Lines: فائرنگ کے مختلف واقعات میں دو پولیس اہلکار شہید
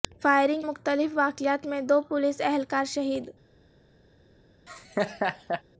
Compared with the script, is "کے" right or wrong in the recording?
wrong